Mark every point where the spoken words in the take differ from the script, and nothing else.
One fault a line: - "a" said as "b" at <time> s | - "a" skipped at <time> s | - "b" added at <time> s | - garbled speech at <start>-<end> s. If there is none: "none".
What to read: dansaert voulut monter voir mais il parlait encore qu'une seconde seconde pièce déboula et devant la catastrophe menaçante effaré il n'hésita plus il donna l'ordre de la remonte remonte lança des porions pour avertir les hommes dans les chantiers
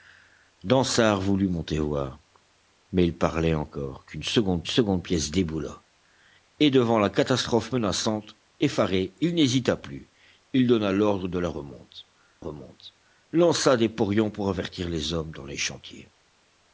none